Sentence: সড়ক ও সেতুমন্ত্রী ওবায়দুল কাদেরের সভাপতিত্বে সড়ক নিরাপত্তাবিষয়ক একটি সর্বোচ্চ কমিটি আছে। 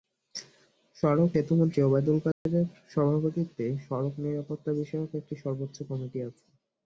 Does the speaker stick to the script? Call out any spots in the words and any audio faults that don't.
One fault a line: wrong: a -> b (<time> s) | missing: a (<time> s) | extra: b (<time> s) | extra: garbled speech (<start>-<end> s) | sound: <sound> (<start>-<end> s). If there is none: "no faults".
missing: ও (1.3 s)
sound: dropout (2.3-2.5 s)